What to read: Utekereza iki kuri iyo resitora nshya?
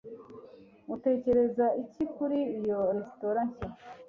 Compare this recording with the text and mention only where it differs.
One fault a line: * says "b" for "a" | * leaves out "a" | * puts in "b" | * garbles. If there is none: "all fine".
all fine